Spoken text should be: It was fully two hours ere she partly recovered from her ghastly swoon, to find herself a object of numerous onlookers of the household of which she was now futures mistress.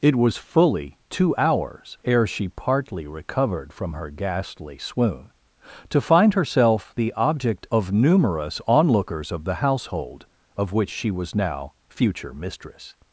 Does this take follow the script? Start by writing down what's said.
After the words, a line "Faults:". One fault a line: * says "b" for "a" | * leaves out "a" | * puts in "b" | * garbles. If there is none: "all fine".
It was fully two hours ere she partly recovered from her ghastly swoon, to find herself the object of numerous onlookers of the household of which she was now future mistress.
Faults:
* says "the" for "a"
* says "future" for "futures"